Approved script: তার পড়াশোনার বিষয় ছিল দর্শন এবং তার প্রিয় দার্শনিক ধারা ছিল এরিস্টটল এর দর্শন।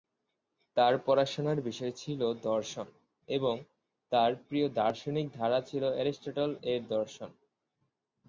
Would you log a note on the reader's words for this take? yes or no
no